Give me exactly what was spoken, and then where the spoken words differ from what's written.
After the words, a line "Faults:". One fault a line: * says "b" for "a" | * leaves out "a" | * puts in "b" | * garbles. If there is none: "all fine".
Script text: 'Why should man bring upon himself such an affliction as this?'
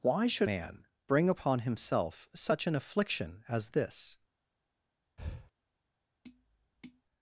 'Why should man bring upon himself such an affliction as this?'
Faults:
all fine